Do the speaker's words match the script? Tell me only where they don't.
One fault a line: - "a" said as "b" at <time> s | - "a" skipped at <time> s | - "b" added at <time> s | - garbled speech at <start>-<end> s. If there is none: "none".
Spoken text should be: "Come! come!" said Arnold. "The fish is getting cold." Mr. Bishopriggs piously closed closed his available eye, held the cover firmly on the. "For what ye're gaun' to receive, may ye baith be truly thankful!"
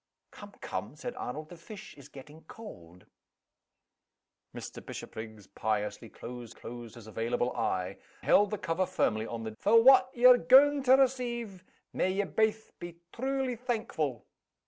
none